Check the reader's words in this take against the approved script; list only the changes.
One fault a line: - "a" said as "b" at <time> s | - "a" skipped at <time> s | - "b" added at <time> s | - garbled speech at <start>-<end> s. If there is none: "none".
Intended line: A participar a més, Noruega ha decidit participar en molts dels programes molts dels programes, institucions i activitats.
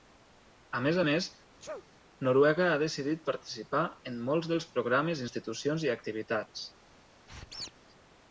- "participar" said as "més" at 0.8 s
- "molts dels programes" skipped at 5.2 s